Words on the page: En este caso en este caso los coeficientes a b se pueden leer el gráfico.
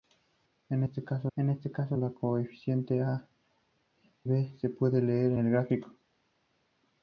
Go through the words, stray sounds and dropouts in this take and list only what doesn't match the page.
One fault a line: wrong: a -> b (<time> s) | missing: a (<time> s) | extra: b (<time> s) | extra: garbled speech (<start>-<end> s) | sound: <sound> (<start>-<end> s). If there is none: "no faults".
no faults